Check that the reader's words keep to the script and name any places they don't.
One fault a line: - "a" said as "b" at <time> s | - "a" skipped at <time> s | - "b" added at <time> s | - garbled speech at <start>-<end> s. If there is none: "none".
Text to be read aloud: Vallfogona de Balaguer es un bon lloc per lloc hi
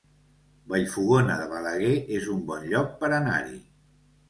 - "lloc" said as "anar" at 3.2 s